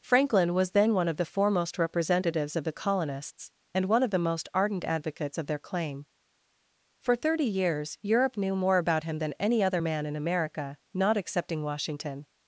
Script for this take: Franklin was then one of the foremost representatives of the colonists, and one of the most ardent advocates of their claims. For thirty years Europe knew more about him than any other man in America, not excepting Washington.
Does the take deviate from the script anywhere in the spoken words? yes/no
yes